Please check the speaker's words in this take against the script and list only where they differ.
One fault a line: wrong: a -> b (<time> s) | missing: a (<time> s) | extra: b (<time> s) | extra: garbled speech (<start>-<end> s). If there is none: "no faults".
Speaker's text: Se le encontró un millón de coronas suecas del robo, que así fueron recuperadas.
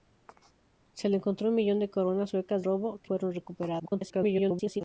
missing: del (2.6 s)
missing: así (3.1 s)
extra: garbled speech (3.8-4.8 s)